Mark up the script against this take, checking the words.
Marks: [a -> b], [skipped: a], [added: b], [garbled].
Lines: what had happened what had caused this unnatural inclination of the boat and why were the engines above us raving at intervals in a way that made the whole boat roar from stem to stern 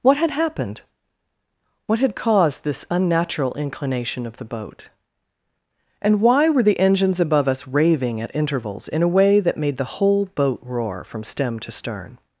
what had happened what had caused this unnatural inclination of the boat and why were the engines above us raving at intervals in a way that made the whole boat roar from stem to stern